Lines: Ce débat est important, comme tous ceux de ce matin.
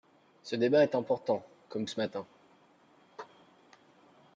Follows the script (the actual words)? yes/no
no